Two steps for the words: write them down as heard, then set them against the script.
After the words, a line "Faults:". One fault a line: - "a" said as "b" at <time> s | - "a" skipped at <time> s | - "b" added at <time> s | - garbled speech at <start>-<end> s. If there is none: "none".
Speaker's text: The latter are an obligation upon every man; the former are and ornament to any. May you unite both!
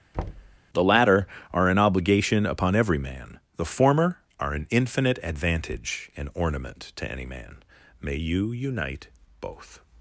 The latter are an obligation upon every man; the former are an infinite advantage and ornament to any man. May you unite both!
Faults:
- "an infinite advantage" added at 4.5 s
- "man" added at 7.3 s